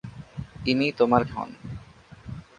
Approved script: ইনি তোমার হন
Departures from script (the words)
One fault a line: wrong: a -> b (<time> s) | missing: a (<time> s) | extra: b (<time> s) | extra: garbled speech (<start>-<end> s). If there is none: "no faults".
no faults